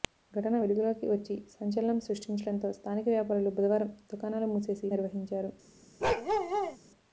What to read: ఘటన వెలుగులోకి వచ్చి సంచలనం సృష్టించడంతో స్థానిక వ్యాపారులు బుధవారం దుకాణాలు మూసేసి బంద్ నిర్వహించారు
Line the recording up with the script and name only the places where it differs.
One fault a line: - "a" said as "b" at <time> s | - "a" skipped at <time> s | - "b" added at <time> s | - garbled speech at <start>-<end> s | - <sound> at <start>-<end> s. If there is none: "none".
- "బంద్" skipped at 4.9 s
- bark at 6.0-6.8 s